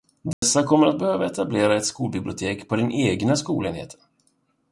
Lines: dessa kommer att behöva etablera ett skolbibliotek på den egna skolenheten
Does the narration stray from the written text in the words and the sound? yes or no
yes